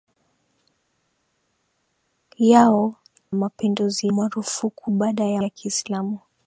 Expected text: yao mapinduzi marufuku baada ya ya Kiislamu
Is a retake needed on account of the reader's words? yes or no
no